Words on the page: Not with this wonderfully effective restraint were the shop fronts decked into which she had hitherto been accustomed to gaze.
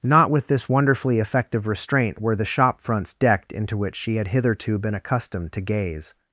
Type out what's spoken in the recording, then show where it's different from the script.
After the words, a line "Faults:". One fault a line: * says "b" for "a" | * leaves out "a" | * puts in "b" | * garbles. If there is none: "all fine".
Not with this wonderfully effective restraint were the shop fronts decked into which she had hitherto been accustomed to gaze.
Faults:
all fine